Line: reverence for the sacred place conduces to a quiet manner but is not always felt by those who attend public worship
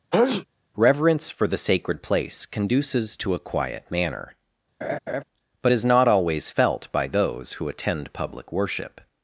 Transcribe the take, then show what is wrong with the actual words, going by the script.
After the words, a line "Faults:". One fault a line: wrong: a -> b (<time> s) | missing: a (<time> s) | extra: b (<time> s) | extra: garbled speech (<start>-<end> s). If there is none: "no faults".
reverence for the sacred place conduces to a quiet manner but is not always felt by those who attend public worship
Faults:
no faults